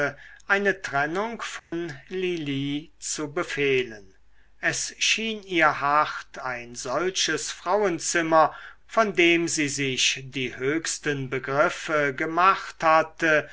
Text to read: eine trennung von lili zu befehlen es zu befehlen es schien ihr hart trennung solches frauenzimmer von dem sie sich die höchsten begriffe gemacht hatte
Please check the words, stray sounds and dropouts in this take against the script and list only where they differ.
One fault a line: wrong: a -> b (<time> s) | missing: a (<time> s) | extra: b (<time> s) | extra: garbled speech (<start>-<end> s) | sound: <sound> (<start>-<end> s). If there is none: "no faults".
sound: dropout (1.6-1.7 s)
missing: zu befehlen es (4.9 s)
wrong: trennung -> ein (6.4 s)